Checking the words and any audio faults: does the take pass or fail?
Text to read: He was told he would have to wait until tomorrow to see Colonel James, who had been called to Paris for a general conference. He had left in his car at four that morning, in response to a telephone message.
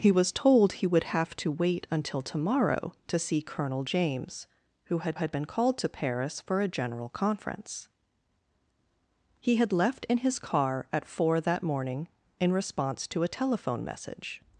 fail